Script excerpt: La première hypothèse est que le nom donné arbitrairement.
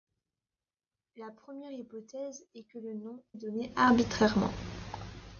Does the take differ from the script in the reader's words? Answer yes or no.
no